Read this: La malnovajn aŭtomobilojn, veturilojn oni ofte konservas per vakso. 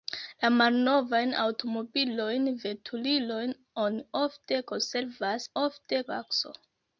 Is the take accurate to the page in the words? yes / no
no